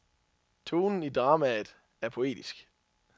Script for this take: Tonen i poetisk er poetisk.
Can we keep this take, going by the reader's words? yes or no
no